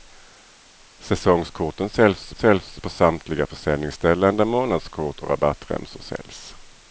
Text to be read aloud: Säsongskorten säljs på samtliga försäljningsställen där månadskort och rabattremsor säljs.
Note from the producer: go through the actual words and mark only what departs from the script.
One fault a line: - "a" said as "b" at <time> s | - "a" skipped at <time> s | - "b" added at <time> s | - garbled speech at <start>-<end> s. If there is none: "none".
- "säljs" added at 2.3 s